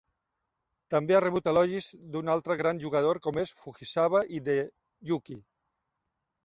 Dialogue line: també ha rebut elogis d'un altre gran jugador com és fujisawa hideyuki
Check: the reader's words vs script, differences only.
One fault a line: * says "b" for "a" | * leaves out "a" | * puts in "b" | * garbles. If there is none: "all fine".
all fine